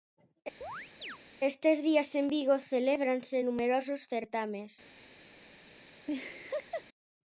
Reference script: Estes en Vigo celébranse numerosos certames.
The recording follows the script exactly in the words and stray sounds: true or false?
false